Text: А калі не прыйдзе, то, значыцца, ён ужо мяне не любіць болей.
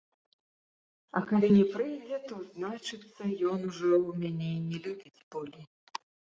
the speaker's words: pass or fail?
pass